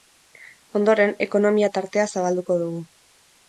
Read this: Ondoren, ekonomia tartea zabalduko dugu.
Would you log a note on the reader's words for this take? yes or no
no